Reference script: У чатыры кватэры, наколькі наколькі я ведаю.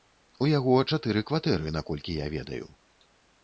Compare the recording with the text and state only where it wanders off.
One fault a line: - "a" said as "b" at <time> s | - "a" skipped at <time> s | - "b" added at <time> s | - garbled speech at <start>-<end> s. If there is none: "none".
- "яго" added at 0.5 s
- "наколькі" skipped at 2.2 s